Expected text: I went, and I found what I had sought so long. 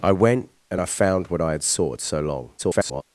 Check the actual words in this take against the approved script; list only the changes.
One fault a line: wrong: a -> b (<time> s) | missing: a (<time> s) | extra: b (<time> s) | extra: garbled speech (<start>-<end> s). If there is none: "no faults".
extra: garbled speech (2.6-3.0 s)